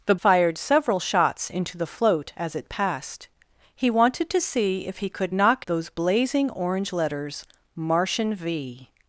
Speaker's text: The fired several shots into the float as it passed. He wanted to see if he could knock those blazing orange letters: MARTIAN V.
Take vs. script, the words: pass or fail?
pass